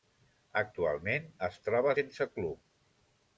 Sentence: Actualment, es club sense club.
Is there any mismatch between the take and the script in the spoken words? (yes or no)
yes